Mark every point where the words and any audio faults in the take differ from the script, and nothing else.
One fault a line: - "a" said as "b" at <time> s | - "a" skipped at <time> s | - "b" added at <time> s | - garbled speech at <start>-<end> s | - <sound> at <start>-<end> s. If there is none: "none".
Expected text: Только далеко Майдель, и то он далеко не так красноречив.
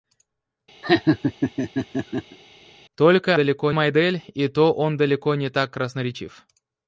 - laugh at 0.8-2.4 s